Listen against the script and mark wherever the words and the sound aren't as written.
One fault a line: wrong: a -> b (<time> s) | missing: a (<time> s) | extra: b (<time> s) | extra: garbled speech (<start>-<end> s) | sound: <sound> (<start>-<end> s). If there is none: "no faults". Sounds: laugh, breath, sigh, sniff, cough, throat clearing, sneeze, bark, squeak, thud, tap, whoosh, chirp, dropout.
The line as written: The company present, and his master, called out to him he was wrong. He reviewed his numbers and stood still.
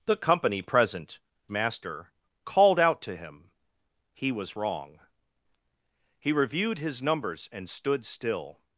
missing: and his (1.2 s)